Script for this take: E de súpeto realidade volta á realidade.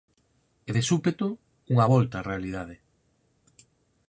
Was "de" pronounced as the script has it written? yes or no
yes